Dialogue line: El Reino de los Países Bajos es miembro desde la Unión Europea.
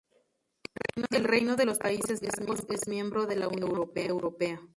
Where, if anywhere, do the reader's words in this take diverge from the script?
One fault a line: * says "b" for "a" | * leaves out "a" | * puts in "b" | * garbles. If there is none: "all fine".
* says "de" for "desde"